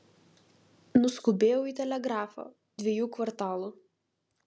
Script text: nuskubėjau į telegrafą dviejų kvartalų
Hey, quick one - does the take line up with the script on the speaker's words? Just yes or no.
yes